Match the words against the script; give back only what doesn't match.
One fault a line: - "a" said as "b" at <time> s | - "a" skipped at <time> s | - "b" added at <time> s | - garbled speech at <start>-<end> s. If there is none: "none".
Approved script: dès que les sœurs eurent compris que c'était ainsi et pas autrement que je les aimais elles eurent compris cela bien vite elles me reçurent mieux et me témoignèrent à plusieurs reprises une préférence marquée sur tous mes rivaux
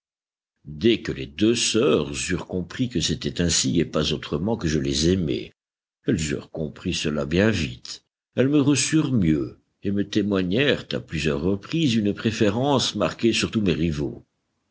- "deux" added at 1.3 s